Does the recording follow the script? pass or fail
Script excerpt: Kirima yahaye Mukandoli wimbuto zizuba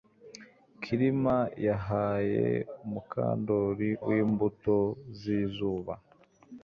pass